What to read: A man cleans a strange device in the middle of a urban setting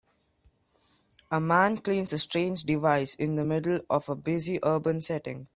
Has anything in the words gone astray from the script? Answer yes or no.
yes